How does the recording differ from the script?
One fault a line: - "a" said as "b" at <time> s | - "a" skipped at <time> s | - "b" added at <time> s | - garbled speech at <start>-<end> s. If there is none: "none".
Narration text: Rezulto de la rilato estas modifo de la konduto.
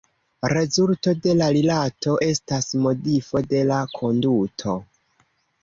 none